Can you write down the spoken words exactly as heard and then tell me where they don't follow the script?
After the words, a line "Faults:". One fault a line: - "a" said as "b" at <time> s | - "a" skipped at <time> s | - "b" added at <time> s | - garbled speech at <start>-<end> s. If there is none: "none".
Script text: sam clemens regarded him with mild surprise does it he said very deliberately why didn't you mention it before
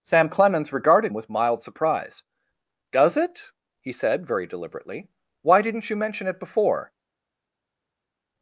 sam clemens regarded with mild surprise does it he said very deliberately why didn't you mention it before
Faults:
- "him" skipped at 1.1 s